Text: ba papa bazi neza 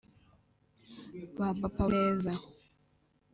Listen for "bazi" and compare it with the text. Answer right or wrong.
wrong